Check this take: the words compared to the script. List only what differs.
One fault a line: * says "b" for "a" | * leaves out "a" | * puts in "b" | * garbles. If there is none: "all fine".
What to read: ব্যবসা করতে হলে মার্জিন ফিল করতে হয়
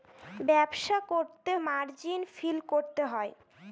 * leaves out "হলে"